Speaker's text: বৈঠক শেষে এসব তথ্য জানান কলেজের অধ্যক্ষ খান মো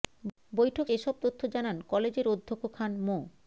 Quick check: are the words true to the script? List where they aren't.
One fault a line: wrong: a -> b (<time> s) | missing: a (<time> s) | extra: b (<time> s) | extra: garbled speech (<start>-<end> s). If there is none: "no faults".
missing: শেষে (0.9 s)